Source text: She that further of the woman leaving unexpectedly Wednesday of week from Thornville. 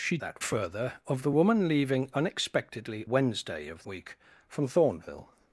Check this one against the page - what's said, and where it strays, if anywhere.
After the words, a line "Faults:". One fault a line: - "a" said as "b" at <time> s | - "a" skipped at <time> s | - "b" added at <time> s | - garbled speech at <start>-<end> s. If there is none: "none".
She that further of the woman leaving unexpectedly Wednesday of week from Thornville.
Faults:
none